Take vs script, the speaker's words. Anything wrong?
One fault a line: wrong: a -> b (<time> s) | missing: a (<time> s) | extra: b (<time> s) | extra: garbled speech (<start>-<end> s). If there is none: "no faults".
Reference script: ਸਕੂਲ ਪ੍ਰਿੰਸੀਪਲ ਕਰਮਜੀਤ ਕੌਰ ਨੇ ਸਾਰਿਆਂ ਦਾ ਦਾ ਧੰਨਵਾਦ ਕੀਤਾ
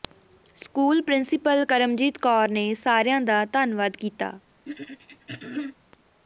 missing: ਦਾ (3.4 s)